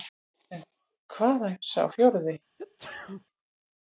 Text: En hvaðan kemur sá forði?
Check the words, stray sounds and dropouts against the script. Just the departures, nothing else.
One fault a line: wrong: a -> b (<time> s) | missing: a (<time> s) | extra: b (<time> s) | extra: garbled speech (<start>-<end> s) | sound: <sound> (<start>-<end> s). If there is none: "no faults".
missing: kemur (1.6 s)
sound: sneeze (2.6-3.3 s)